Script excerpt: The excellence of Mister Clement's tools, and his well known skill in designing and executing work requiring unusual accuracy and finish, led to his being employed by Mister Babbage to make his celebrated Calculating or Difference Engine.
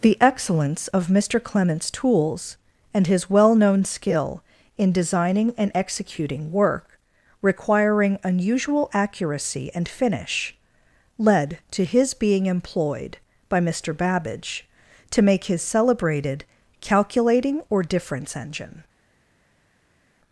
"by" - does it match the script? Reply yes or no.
yes